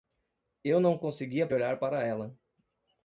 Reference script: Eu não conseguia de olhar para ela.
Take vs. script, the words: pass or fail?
pass